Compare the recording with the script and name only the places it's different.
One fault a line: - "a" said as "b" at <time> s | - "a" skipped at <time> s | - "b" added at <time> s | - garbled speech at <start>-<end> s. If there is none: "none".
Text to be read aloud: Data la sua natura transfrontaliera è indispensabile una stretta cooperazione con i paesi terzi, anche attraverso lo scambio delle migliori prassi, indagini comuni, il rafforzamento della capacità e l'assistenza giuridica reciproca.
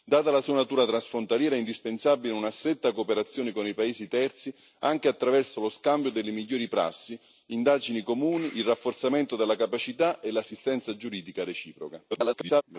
- garbled speech at 12.1-12.6 s